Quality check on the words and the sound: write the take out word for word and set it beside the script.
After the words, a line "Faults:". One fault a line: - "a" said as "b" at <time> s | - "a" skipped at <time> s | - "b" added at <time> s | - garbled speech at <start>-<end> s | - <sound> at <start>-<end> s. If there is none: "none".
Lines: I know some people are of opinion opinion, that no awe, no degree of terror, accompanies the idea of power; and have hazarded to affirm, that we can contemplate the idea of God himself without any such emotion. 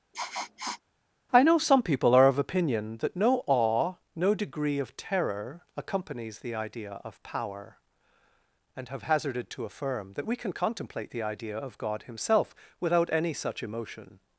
I know some people are of opinion, that no awe, no degree of terror, accompanies the idea of power; and have hazarded to affirm, that we can contemplate the idea of God himself without any such emotion.
Faults:
- sniff at 0.1-0.8 s
- "opinion" skipped at 3.0 s